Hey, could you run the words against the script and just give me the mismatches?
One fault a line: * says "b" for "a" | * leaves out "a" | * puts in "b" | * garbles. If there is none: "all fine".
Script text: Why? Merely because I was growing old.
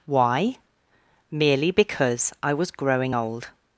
all fine